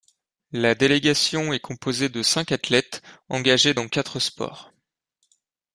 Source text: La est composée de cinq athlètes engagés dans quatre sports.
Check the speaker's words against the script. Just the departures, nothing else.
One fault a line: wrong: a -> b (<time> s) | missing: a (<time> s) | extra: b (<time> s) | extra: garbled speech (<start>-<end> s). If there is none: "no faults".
extra: délégation (0.7 s)